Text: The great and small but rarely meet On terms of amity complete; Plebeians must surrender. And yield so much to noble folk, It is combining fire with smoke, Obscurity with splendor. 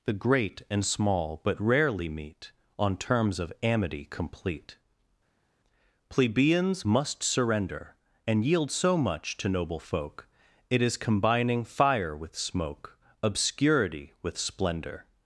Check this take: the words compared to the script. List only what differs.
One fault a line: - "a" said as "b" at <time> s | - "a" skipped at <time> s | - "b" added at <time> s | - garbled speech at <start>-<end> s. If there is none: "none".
none